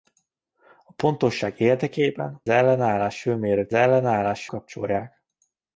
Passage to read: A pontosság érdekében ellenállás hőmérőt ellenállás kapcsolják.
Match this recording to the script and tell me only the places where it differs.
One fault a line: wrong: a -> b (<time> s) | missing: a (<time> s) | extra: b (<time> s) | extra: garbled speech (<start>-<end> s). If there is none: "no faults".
no faults